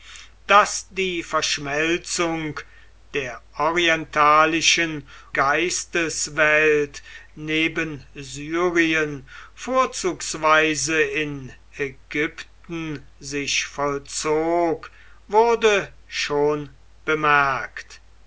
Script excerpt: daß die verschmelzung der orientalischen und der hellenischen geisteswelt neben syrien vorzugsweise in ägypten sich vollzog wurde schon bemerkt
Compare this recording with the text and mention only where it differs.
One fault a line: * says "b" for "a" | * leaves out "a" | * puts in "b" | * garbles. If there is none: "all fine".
* leaves out "und der hellenischen"